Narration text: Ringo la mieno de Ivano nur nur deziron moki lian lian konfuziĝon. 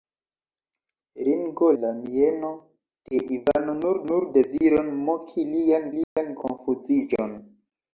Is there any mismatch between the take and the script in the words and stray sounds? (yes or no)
yes